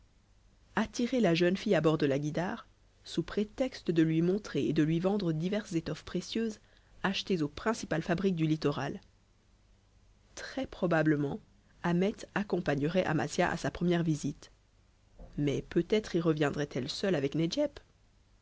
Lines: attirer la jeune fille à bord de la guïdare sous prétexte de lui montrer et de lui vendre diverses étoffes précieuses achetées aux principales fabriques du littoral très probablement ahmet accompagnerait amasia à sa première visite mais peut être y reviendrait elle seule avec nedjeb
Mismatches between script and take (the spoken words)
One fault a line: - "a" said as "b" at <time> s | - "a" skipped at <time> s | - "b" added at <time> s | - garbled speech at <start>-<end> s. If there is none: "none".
none